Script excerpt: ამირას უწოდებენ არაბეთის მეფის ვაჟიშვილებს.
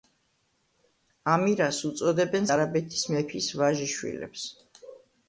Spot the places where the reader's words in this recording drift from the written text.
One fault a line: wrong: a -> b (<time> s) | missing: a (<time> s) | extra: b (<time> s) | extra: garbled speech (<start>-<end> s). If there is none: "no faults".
no faults